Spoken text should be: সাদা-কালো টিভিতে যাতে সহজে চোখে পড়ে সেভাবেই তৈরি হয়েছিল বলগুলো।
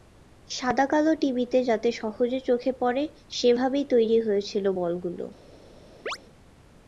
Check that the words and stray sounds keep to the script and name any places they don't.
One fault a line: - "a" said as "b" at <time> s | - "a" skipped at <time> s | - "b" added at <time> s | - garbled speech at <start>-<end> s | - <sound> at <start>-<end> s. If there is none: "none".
- chirp at 6.1-6.2 s